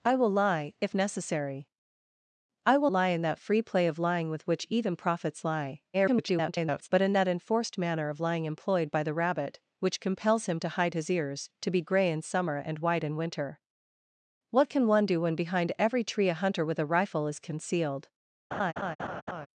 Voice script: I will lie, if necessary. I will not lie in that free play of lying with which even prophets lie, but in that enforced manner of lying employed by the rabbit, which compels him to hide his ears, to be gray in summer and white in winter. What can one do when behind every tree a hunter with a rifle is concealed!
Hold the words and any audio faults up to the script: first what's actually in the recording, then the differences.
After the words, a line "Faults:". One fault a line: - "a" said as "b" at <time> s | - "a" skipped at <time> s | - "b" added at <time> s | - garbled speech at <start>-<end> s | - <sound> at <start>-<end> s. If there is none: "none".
I will lie, if necessary. I will lie in that free play of lying with which even prophets lie, [garbled] but in that enforced manner of lying employed by the rabbit, which compels him to hide his ears, to be gray in summer and white in winter. What can one do when behind every tree a hunter with a rifle is concealed!
Faults:
- "not" skipped at 2.9 s
- garbled speech at 5.9-6.9 s
- laugh at 18.5-19.5 s